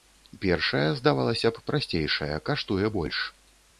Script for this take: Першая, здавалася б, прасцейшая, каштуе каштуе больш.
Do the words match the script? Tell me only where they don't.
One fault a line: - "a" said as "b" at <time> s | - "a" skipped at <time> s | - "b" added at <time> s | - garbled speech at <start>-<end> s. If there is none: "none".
- "каштуе" skipped at 2.9 s